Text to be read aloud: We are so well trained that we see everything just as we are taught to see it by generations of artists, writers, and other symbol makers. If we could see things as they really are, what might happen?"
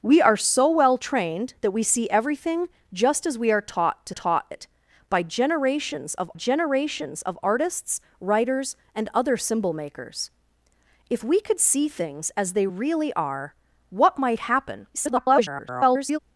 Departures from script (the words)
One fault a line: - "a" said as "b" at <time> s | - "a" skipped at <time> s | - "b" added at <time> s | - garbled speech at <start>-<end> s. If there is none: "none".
- "see" said as "taught" at 4.1 s
- "generations of" added at 6.3 s
- garbled speech at 14.9-16.2 s